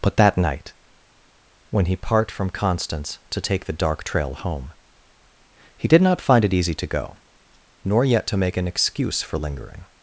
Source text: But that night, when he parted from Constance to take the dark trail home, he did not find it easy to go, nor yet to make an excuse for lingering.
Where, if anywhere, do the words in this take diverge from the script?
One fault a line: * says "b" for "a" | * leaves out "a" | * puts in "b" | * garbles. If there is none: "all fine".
* says "part" for "parted"